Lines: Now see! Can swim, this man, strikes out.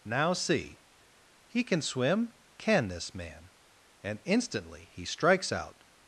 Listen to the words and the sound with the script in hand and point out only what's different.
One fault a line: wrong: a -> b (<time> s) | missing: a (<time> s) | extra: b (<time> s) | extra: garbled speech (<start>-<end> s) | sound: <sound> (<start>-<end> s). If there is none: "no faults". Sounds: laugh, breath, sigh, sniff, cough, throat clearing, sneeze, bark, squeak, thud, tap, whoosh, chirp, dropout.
extra: He (1.4 s)
extra: can (2.6 s)
extra: and instantly he (4.0 s)